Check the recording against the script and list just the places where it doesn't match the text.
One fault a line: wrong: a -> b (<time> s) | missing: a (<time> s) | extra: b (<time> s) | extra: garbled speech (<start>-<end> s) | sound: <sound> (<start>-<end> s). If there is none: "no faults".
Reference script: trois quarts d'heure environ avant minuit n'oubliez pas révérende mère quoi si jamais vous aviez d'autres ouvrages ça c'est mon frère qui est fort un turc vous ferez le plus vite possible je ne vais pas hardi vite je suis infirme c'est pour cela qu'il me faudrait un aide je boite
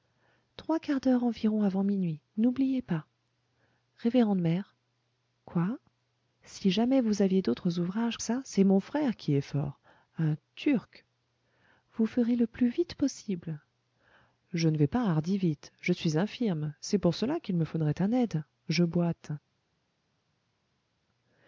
no faults